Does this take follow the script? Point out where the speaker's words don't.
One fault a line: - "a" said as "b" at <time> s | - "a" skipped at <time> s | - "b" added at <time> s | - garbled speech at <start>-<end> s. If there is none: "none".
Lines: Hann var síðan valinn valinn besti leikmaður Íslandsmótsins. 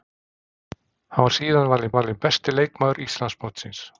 none